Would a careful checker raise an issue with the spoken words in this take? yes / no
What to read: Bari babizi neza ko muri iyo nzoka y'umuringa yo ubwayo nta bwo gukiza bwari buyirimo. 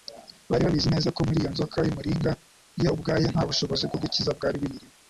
yes